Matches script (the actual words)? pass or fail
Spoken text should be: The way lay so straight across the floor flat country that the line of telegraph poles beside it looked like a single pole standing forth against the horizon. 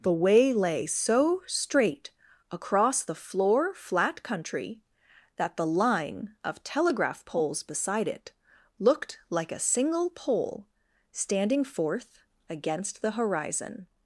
pass